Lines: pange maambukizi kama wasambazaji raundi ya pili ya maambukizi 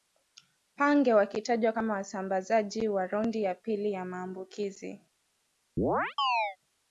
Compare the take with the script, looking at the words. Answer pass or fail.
fail